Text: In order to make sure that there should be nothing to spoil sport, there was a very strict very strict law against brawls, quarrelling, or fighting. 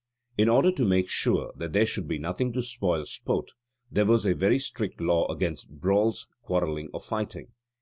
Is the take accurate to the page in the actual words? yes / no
no